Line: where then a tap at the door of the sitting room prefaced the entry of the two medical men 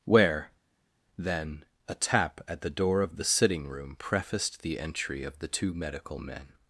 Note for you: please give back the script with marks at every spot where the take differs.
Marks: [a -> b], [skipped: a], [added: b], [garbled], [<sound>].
where then a tap at the door of the sitting room prefaced the entry of the two medical men